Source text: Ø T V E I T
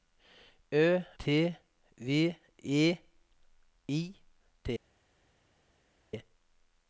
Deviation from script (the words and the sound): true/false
false